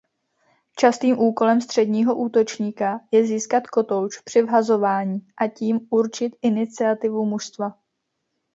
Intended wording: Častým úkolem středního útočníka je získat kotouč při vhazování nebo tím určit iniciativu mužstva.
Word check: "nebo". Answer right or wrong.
wrong